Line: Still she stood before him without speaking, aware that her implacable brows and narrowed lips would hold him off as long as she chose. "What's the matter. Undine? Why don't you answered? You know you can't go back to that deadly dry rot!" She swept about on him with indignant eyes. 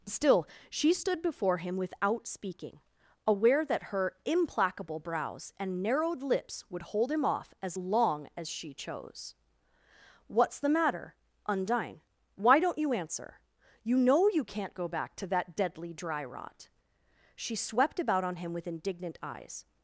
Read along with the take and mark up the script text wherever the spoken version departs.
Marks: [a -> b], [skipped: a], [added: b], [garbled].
Still she stood before him without speaking, aware that her implacable brows and narrowed lips would hold him off as long as she chose. "What's the matter. Undine? Why don't you [answered? -> answer] You know you can't go back to that deadly dry rot!" She swept about on him with indignant eyes.